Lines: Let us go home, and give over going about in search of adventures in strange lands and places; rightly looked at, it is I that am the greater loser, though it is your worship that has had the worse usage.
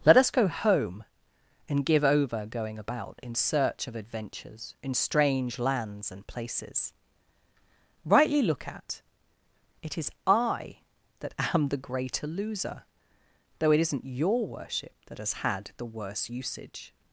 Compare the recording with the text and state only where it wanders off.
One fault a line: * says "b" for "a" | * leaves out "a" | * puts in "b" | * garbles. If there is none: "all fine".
* says "look" for "looked"
* says "isn't" for "is"